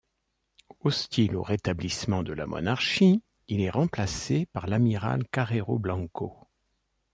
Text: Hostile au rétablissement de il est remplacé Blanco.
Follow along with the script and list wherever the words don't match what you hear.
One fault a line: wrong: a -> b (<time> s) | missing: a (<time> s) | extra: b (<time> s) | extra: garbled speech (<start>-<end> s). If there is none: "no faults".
extra: la monarchie (2.3 s)
extra: par l'amiral Carrero (4.5 s)